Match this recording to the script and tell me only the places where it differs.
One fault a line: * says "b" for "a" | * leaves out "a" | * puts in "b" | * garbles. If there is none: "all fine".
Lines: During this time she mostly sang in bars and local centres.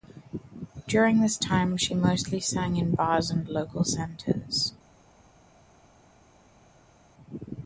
all fine